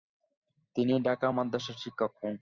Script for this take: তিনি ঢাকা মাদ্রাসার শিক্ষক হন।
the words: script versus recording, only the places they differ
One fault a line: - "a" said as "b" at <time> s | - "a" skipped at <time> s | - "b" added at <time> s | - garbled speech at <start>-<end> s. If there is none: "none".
none